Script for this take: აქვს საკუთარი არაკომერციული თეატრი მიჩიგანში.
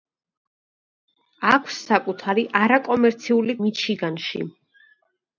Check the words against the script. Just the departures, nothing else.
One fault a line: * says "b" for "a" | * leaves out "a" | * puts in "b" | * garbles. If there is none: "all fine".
* leaves out "თეატრი"